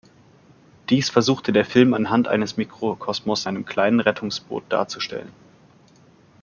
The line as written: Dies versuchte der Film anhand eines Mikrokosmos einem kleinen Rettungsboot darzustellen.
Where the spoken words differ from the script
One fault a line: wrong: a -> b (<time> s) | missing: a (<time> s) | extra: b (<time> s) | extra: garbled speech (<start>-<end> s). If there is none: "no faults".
no faults